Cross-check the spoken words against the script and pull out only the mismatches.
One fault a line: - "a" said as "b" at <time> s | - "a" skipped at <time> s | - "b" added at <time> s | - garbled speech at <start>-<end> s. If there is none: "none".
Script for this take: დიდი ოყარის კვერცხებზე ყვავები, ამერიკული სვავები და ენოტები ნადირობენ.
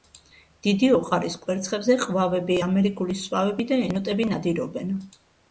none